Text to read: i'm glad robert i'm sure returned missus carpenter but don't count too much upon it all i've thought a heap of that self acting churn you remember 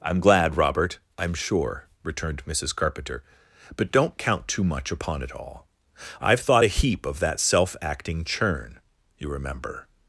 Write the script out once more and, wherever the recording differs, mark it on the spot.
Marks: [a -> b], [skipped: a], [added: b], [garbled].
i'm glad robert i'm sure returned missus carpenter but don't count too much upon it all i've thought a heap of that self acting churn you remember